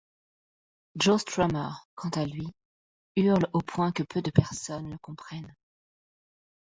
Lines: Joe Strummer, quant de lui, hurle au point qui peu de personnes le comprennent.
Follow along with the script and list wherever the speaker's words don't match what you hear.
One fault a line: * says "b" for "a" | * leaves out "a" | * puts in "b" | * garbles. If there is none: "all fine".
* says "à" for "de"
* says "que" for "qui"